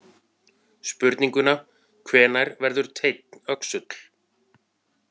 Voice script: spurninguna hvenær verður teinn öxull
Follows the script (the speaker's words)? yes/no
yes